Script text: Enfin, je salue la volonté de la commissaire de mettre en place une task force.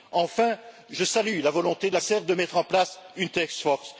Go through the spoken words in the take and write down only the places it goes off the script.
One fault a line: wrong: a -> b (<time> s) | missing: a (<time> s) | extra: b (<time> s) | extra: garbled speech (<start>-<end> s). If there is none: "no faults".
no faults